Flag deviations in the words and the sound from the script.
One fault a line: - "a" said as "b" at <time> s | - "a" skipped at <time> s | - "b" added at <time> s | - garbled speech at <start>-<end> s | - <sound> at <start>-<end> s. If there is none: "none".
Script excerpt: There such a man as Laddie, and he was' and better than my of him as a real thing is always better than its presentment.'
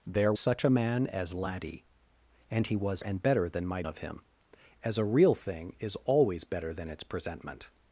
none